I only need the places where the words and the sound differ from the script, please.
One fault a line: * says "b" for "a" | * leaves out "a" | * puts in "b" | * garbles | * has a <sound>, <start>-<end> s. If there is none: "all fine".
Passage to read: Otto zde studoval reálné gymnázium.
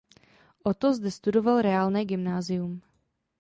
all fine